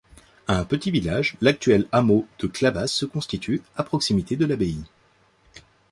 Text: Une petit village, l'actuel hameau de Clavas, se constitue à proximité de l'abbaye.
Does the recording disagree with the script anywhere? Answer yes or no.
yes